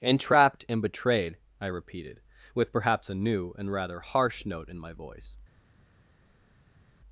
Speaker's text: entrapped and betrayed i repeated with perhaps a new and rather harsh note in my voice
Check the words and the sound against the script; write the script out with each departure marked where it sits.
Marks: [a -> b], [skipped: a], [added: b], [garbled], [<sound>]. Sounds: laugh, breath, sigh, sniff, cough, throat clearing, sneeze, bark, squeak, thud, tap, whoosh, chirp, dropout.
entrapped and betrayed i repeated with perhaps a new and rather harsh note in my voice